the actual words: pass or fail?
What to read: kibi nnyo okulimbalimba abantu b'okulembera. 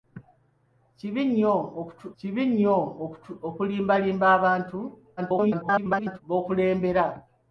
fail